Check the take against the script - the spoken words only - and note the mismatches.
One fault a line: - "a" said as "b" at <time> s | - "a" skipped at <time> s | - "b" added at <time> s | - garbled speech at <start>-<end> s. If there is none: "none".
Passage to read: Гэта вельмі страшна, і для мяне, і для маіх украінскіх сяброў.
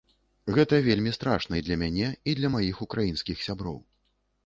none